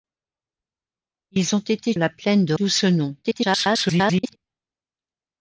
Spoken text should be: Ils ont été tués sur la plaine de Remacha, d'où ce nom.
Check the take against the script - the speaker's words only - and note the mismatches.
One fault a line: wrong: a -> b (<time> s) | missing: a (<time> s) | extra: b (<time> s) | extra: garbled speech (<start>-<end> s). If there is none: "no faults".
missing: tués sur (1.9 s)
missing: Remacha (2.5 s)
extra: garbled speech (3.2-4.4 s)